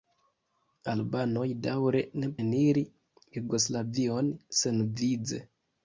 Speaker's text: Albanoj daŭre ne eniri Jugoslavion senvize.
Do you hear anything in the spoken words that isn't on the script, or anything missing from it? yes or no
no